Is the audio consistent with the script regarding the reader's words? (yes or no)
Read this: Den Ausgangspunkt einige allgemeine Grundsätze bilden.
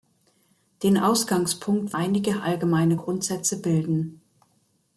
yes